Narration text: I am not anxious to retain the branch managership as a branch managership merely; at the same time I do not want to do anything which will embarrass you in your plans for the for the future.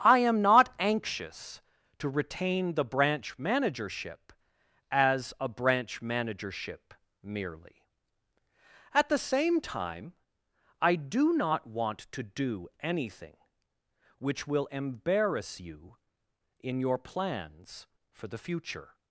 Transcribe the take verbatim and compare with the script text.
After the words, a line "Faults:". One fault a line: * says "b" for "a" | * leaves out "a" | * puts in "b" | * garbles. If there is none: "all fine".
I am not anxious to retain the branch managership as a branch managership merely; at the same time I do not want to do anything which will embarrass you in your plans for the future.
Faults:
* leaves out "for the"